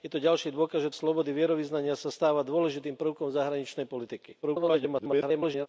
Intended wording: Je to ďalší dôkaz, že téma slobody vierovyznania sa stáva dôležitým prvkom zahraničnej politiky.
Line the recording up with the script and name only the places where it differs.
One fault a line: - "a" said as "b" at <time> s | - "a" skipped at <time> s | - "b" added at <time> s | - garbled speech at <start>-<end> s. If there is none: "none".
- "téma" skipped at 0.9 s
- garbled speech at 4.4-5.7 s